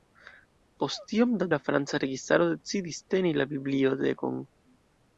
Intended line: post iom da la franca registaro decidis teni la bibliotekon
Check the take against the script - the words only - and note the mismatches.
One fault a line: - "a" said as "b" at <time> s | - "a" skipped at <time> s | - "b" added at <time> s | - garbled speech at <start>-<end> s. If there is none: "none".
none